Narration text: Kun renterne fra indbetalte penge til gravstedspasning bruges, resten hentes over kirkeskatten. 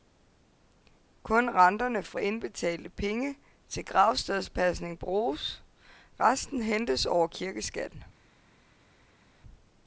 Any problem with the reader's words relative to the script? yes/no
no